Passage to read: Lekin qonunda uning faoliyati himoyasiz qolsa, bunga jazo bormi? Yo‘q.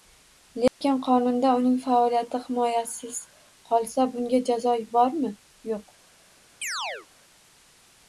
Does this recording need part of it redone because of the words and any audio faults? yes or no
yes